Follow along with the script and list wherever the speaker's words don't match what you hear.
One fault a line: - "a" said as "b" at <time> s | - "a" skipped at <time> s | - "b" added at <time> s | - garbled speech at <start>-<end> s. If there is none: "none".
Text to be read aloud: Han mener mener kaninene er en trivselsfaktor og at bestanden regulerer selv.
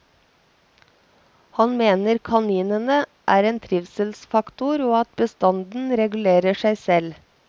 - "mener" skipped at 2.2 s
- "seg" added at 6.6 s